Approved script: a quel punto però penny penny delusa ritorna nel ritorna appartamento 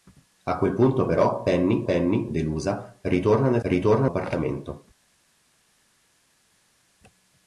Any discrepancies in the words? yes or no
no